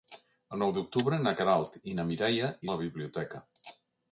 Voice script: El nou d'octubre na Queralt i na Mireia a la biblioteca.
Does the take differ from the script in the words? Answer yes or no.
no